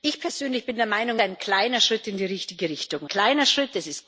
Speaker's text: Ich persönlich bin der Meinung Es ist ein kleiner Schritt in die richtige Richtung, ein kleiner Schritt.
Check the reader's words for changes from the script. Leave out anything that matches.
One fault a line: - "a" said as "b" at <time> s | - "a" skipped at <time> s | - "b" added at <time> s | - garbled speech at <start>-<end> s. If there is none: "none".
- "Es ist" skipped at 1.2 s
- "ein" skipped at 3.1 s